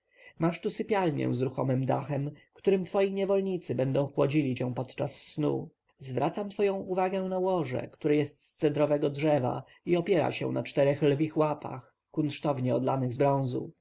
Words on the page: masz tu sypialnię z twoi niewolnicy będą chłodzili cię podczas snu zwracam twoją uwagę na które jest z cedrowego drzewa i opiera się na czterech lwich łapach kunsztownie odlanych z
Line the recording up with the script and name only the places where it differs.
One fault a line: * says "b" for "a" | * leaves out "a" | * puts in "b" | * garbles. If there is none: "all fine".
* puts in "ruchomym dachem którym"
* puts in "łoże"